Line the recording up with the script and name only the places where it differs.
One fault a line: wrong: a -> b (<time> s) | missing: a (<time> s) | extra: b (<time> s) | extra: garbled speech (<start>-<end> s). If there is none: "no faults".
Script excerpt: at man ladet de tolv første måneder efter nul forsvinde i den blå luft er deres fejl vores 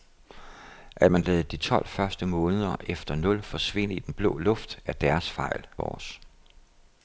no faults